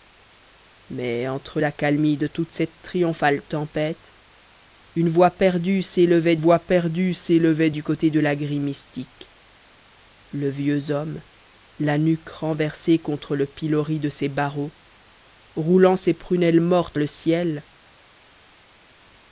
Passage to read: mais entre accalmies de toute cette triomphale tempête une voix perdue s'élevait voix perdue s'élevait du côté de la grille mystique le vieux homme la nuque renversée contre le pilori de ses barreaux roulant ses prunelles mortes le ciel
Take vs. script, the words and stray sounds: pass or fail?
pass